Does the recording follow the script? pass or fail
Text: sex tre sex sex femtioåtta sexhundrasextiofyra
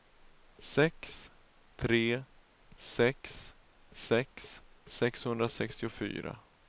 fail